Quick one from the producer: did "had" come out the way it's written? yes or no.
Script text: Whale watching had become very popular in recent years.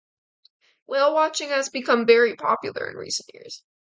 no